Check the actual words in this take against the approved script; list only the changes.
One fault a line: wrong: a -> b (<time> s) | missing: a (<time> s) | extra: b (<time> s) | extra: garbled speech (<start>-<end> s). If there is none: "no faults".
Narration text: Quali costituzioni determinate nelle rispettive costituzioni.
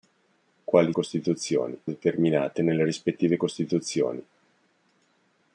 no faults